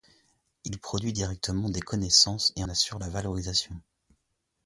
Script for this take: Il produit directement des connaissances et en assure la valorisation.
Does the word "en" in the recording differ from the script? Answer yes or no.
yes